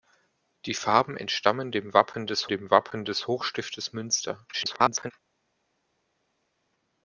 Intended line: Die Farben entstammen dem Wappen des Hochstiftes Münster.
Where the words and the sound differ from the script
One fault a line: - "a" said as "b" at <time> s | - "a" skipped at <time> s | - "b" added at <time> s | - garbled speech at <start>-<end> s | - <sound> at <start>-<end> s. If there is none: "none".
- "dem Wappen des" added at 2.5 s
- garbled speech at 4.5-5.1 s